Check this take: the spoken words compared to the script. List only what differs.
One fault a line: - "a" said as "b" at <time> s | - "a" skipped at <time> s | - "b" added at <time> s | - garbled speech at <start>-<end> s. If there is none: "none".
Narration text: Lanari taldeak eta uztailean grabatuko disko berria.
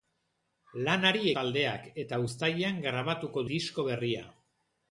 none